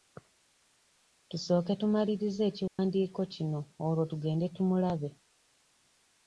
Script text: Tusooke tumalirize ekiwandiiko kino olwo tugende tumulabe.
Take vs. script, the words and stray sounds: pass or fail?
fail